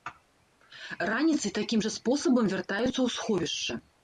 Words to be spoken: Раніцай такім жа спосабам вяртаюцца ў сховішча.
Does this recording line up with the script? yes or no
yes